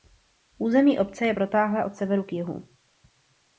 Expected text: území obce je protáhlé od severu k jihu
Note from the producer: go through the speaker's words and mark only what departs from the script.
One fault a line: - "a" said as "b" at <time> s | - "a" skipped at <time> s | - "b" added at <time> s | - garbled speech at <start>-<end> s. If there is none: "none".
none